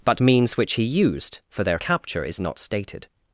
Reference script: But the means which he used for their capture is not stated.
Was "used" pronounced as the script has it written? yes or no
yes